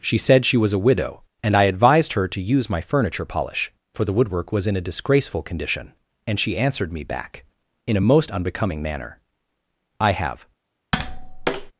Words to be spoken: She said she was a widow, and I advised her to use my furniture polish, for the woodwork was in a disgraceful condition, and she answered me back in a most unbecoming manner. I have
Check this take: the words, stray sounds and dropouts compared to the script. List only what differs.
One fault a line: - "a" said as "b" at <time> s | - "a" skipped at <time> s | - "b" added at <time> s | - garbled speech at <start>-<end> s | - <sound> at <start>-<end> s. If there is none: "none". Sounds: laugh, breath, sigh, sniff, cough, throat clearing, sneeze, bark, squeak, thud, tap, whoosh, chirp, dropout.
- tap at 10.9-11.7 s